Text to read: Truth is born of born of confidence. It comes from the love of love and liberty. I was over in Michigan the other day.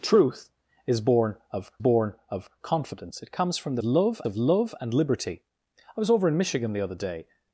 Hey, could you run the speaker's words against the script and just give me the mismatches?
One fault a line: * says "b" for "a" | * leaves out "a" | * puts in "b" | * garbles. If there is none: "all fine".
all fine